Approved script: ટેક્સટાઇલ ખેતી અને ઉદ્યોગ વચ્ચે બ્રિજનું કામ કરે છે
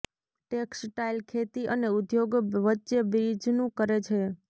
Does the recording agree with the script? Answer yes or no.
no